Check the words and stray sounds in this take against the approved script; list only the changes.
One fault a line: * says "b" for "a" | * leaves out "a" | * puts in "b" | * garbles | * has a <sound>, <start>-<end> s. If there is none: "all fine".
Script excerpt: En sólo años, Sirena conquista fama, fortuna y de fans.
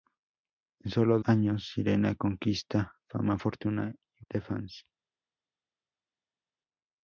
all fine